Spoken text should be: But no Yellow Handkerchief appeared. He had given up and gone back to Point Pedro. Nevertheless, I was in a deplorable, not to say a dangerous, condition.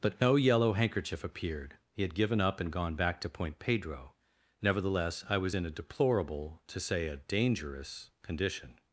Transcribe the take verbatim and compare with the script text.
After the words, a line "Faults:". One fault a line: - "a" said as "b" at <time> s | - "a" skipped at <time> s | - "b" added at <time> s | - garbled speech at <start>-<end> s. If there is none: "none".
But no Yellow Handkerchief appeared. He had given up and gone back to Point Pedro. Nevertheless, I was in a deplorable, to say a dangerous, condition.
Faults:
- "not" skipped at 6.6 s